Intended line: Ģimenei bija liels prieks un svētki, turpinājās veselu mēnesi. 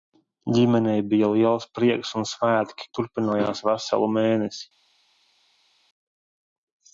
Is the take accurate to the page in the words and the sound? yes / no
yes